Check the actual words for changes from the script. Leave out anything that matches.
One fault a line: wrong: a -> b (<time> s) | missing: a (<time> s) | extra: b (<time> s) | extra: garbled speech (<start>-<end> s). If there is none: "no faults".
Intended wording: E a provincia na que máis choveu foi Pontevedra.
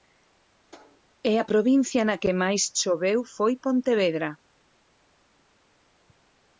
no faults